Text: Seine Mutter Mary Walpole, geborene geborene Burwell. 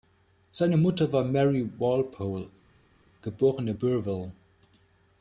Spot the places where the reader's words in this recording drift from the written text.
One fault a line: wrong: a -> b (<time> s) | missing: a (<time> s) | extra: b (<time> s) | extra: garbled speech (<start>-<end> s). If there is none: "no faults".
extra: war (1.1 s)
missing: geborene (3.7 s)